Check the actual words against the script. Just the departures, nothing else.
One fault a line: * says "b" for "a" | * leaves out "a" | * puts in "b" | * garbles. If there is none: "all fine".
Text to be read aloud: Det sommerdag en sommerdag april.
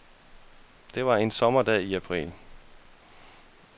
* says "var" for "sommerdag"
* puts in "i"